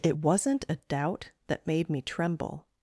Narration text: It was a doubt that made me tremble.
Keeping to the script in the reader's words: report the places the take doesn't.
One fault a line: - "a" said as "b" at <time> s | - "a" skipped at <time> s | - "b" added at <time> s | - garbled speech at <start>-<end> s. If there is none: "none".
- "was" said as "wasn't" at 0.1 s